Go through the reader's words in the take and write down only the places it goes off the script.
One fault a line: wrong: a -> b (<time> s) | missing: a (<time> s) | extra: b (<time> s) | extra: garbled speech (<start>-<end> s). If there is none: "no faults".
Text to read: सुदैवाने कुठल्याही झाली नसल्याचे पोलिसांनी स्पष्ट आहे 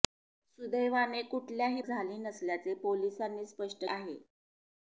no faults